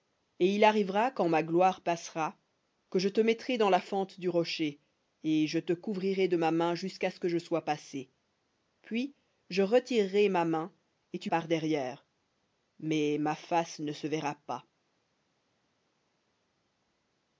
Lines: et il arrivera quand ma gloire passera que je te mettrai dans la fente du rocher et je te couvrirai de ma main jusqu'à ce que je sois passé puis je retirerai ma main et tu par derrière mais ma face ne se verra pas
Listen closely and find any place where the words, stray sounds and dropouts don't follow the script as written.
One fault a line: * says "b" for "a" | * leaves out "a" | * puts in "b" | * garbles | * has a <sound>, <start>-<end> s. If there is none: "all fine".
all fine